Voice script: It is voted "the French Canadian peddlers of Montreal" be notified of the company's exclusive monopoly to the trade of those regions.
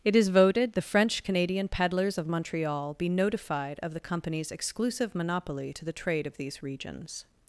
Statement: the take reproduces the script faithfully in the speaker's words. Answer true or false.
false